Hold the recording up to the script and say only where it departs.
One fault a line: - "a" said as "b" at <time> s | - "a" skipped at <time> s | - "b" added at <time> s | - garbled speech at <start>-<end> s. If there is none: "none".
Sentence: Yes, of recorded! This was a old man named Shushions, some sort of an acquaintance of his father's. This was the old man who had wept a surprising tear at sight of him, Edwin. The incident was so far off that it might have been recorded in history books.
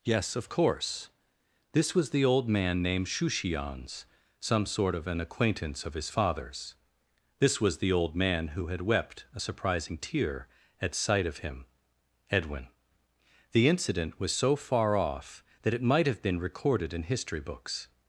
- "recorded" said as "course" at 0.5 s
- "a" said as "the" at 2.1 s